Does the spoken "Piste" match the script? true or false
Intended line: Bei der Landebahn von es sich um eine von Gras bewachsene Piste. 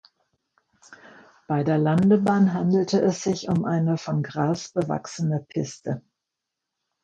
true